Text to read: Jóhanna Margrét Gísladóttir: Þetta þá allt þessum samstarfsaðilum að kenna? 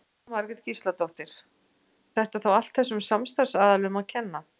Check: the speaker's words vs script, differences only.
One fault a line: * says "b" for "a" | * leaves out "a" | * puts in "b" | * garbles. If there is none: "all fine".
all fine